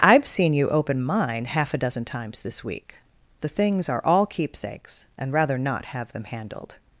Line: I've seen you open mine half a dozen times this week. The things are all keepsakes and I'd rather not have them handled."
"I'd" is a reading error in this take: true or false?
true